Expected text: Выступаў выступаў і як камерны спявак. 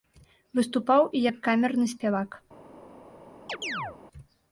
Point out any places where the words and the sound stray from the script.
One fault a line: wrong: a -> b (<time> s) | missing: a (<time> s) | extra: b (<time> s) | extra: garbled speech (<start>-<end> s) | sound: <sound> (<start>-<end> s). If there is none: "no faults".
missing: выступаў (1.0 s)
sound: chirp (3.5-4.0 s)